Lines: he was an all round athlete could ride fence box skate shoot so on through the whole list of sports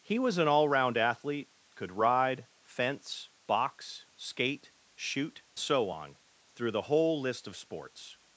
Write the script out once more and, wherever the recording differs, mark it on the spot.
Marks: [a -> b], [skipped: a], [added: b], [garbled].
he was an all round athlete could ride fence box skate shoot so on through the whole list of sports